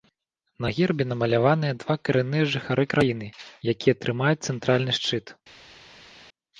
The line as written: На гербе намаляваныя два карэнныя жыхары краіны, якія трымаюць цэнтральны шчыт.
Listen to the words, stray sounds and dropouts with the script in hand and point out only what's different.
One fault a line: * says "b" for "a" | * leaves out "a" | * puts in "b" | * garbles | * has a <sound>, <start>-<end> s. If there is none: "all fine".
all fine